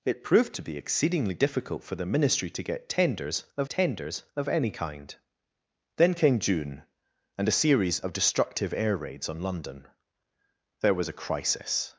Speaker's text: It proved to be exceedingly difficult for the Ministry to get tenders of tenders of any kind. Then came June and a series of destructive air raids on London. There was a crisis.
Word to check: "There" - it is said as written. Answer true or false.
true